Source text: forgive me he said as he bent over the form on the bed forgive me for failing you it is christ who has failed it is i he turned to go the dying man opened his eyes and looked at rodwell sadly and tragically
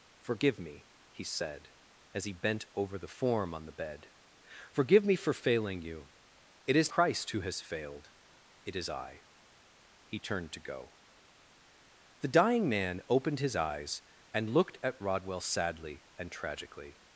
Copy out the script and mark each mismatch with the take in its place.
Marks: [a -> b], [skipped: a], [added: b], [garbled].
forgive me he said as he bent over the form on the bed forgive me for failing you it is christ who has failed it is i he turned to go the dying man opened his eyes and looked at rodwell sadly and tragically